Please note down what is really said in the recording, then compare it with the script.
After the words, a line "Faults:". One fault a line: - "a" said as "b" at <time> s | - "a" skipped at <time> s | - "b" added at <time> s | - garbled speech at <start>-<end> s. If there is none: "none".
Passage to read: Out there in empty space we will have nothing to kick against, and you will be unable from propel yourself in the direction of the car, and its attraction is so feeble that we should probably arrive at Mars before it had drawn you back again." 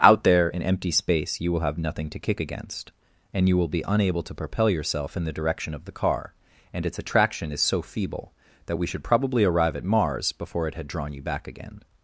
Out there in empty space you will have nothing to kick against, and you will be unable to propel yourself in the direction of the car, and its attraction is so feeble that we should probably arrive at Mars before it had drawn you back again."
Faults:
- "we" said as "you" at 1.4 s
- "from" said as "to" at 4.2 s